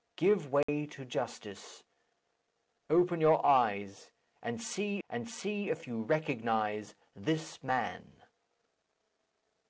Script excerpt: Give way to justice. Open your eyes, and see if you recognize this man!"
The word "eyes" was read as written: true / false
true